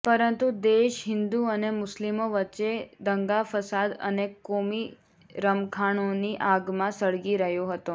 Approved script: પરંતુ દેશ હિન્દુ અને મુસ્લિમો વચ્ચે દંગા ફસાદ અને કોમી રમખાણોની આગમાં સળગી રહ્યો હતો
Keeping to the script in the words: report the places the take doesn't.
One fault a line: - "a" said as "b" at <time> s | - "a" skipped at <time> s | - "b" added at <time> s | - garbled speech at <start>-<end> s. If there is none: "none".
none